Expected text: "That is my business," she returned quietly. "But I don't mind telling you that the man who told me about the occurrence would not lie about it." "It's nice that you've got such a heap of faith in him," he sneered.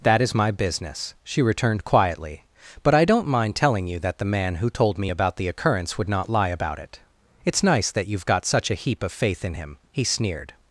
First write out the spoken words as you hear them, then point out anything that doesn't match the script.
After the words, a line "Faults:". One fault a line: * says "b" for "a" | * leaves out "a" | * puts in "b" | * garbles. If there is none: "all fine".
"That is my business," she returned quietly. "But I don't mind telling you that the man who told me about the occurrence would not lie about it." "It's nice that you've got such a heap of faith in him," he sneered.
Faults:
all fine